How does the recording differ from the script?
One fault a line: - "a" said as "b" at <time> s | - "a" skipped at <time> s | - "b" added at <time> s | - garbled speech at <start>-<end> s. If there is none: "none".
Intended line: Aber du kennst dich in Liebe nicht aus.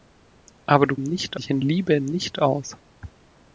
- "kennst" said as "nicht" at 1.0 s